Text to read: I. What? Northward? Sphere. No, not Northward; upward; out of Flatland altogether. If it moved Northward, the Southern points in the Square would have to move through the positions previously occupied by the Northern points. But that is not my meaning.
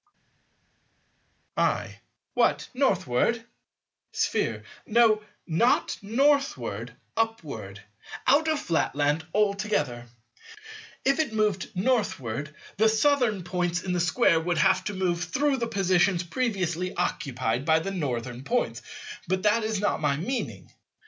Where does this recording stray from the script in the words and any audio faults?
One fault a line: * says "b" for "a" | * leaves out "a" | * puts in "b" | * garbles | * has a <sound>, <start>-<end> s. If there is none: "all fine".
all fine